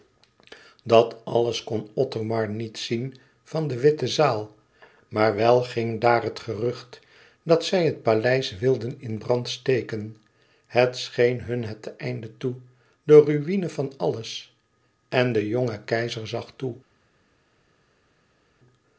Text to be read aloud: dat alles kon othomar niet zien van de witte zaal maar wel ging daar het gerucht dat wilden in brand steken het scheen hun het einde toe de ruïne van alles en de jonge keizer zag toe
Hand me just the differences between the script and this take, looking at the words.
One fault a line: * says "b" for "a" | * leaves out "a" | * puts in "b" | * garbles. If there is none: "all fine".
* puts in "zij het paleis"